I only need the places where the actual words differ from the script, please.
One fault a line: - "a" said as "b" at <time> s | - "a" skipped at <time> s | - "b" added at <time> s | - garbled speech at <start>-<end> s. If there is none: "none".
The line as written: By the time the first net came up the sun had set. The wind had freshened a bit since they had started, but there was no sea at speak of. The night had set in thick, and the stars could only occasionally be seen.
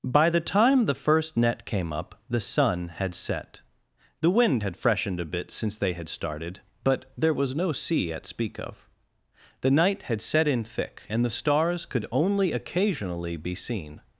none